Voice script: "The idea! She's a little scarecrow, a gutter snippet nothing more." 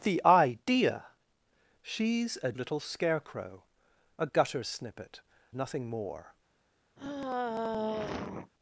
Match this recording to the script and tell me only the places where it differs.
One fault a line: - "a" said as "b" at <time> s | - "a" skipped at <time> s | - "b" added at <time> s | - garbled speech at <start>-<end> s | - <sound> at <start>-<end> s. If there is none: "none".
- sigh at 7.0-8.5 s